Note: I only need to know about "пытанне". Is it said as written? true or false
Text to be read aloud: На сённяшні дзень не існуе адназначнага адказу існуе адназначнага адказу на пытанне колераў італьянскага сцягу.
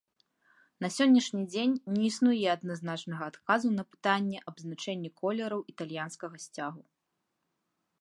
false